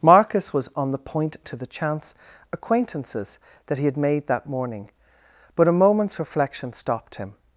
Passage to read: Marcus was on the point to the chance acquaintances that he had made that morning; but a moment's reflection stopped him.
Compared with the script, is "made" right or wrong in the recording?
right